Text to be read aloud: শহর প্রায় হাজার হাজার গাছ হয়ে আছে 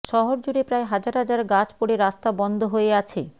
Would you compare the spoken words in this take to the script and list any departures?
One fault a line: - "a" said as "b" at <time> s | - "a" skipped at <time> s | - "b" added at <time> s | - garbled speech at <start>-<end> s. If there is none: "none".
- "জুড়ে" added at 0.4 s
- "পড়ে রাস্তা বন্ধ" added at 1.8 s